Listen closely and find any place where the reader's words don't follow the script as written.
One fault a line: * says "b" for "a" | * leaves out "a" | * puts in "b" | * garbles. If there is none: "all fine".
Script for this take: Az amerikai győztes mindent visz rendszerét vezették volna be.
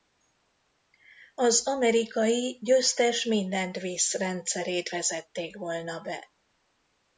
all fine